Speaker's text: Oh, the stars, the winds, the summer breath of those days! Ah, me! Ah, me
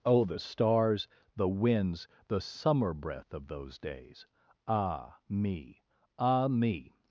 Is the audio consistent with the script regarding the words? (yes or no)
yes